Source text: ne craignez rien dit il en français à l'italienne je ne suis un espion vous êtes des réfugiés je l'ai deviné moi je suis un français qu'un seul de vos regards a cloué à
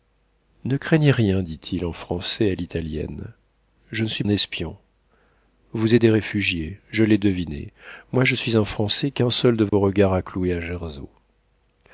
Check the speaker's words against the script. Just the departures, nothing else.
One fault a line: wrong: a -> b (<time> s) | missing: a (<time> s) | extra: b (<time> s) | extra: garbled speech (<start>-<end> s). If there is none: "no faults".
no faults